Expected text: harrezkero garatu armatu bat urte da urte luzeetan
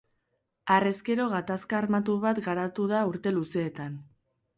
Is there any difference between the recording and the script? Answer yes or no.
yes